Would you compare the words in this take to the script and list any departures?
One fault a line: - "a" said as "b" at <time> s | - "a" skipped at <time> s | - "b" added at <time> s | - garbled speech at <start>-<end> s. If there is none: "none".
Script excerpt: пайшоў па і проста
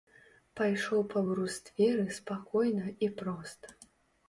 - "брустверы спакойна" added at 1.2 s